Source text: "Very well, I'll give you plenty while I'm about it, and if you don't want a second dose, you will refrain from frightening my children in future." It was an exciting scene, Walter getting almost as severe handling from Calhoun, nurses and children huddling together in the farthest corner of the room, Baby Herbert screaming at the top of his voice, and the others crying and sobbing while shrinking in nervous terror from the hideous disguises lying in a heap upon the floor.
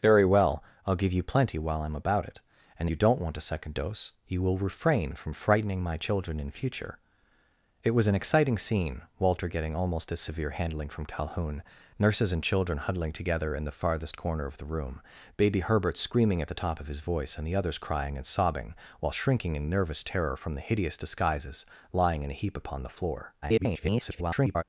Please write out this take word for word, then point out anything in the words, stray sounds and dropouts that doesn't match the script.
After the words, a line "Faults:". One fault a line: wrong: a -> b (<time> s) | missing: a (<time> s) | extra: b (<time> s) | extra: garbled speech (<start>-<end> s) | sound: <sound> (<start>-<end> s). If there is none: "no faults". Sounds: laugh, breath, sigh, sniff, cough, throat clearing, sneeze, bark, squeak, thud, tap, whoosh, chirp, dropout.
"Very well, I'll give you plenty while I'm about it, and you don't want a second dose, you will refrain from frightening my children in future." It was an exciting scene, Walter getting almost as severe handling from Calhoun, nurses and children huddling together in the farthest corner of the room, Baby Herbert screaming at the top of his voice, and the others crying and sobbing while shrinking in nervous terror from the hideous disguises lying in a heap upon the floor. [garbled]
Faults:
missing: if (2.9 s)
extra: garbled speech (23.4-24.6 s)